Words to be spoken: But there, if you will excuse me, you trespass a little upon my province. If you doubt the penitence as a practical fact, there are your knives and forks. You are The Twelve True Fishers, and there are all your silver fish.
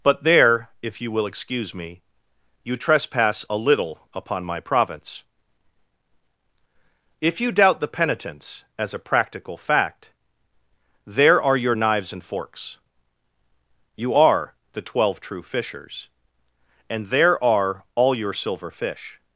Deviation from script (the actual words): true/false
false